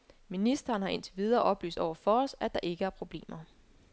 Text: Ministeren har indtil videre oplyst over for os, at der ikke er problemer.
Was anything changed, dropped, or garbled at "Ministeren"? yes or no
no